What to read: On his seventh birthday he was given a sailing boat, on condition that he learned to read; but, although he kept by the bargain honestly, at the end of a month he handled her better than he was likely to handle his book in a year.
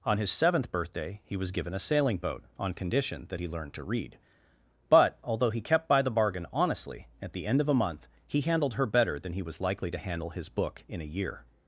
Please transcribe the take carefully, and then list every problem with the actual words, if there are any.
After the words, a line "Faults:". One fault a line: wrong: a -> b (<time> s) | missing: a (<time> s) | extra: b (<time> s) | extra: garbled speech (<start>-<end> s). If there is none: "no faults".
On his seventh birthday he was given a sailing boat, on condition that he learned to read; but, although he kept by the bargain honestly, at the end of a month he handled her better than he was likely to handle his book in a year.
Faults:
no faults